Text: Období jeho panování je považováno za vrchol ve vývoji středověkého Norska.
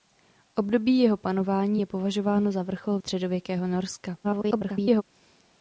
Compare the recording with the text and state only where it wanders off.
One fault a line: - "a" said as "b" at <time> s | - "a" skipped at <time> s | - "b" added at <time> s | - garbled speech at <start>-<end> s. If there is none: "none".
- "ve vývoji" skipped at 3.0 s
- garbled speech at 4.2-5.0 s